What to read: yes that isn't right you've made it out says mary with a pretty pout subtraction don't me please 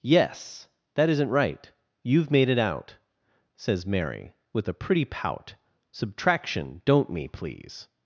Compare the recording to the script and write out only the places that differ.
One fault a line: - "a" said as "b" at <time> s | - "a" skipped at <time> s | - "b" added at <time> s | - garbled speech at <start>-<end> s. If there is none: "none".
none